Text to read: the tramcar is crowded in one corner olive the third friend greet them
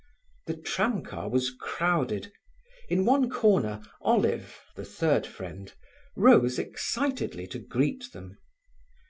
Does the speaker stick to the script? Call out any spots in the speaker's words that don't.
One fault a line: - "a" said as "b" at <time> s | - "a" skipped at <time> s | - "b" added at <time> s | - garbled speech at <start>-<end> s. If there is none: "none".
- "is" said as "was" at 1.3 s
- "rose excitedly to" added at 6.1 s